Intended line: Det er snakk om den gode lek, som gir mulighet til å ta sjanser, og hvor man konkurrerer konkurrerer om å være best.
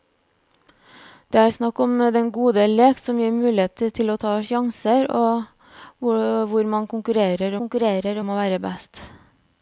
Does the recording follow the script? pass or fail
pass